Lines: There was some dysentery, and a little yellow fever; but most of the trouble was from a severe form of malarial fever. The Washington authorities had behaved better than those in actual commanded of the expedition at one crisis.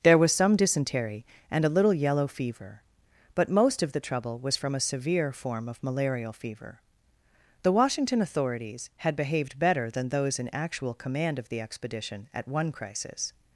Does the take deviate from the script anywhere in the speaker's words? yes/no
yes